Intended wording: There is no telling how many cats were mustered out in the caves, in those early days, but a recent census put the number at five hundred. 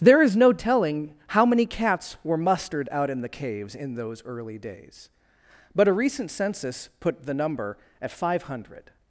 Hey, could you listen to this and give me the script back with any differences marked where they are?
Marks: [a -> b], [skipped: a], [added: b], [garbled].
There is no telling how many cats were mustered out in the caves, in those early days, but a recent census put the number at five hundred.